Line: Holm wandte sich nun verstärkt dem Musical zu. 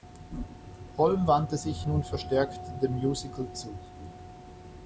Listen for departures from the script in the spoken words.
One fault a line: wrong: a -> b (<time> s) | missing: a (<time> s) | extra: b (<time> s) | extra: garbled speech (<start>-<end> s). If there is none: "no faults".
no faults